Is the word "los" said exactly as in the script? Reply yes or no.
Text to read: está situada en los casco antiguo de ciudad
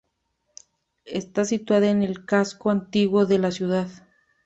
no